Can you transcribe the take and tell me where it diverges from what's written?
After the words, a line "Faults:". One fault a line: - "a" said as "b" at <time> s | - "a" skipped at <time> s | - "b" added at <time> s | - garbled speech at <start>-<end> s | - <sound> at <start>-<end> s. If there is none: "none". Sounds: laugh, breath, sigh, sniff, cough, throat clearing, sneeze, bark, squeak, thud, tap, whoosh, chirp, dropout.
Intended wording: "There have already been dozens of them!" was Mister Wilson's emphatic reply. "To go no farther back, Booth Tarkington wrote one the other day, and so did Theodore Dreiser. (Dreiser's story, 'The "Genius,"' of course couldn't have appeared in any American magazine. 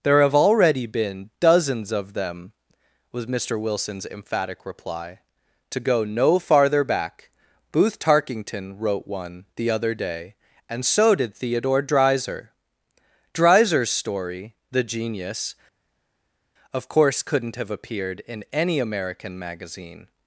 "There have already been dozens of them!" was Mister Wilson's emphatic reply. "To go no farther back, Booth Tarkington wrote one the other day, and so did Theodore Dreiser. (Dreiser's story, 'The "Genius,"' of course couldn't have appeared in any American magazine.
Faults:
none